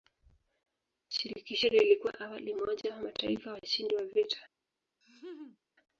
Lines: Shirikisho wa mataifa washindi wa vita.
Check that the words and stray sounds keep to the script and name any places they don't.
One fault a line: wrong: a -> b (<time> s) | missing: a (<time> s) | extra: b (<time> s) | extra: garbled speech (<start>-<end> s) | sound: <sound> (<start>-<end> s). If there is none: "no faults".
extra: lilikuwa awali umoja (1.7 s)
sound: laugh (5.0-5.6 s)